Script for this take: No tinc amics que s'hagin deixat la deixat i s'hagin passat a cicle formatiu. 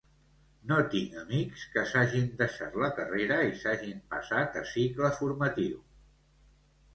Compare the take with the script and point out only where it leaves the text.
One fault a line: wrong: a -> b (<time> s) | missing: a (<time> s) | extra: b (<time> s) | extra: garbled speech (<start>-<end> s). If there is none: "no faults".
wrong: deixat -> carrera (3.0 s)